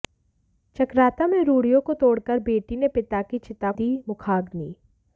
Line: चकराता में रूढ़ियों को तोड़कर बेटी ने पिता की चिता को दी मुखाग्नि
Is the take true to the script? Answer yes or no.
no